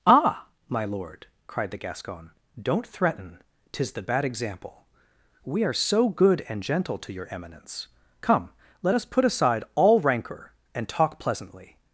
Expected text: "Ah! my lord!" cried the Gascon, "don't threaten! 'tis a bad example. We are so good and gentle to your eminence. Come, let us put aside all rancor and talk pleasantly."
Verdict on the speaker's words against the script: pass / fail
fail